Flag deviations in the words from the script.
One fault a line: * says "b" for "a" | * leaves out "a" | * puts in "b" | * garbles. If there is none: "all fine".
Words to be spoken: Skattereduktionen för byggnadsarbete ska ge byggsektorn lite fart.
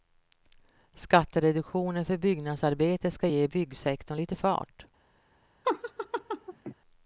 all fine